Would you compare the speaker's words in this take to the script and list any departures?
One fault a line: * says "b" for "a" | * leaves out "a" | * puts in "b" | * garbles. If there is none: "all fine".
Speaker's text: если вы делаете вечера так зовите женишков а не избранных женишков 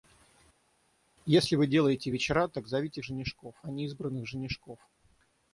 all fine